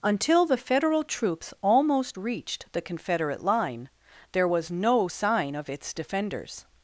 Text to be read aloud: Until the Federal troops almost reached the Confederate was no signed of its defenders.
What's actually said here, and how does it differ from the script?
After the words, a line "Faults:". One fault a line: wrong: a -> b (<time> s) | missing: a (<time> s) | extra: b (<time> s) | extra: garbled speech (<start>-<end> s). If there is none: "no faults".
Until the Federal troops almost reached the Confederate line, there was no sign of its defenders.
Faults:
extra: line there (3.4 s)
wrong: signed -> sign (5.0 s)